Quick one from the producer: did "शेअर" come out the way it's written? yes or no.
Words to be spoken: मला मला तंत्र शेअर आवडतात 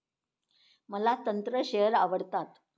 yes